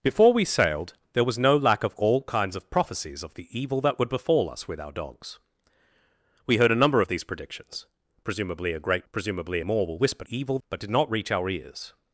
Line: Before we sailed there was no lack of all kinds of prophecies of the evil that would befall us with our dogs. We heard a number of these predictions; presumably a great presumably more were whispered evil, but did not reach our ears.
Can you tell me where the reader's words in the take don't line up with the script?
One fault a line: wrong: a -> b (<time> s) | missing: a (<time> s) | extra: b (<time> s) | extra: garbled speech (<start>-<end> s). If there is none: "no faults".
no faults